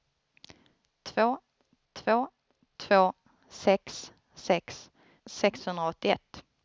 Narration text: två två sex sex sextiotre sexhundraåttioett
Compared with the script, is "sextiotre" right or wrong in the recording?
wrong